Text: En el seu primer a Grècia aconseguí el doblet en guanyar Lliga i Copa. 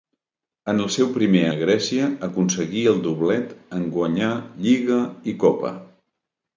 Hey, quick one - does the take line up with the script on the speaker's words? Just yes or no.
yes